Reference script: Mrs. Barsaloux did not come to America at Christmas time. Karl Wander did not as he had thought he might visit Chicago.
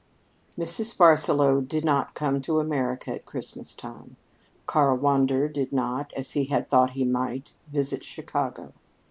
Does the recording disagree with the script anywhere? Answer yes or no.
no